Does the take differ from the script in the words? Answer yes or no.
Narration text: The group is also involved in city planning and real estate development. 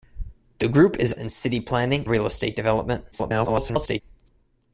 yes